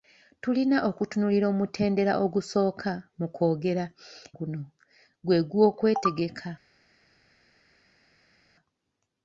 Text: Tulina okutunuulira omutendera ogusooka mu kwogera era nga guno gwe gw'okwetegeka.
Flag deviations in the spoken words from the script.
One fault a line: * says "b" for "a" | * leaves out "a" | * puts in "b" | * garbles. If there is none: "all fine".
* leaves out "era nga"